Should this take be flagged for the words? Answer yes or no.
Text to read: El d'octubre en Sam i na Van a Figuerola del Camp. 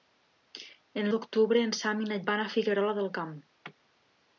no